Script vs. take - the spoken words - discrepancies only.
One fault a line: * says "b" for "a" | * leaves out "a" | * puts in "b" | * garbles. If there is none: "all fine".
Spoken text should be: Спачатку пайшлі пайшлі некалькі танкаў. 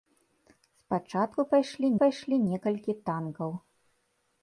all fine